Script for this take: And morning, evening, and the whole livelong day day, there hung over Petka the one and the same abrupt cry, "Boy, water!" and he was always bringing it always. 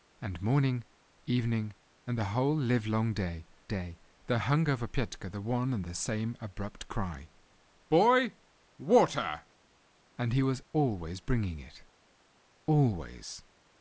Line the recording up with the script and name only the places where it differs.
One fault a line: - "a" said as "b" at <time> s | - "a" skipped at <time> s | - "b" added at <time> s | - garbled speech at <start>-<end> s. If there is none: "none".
none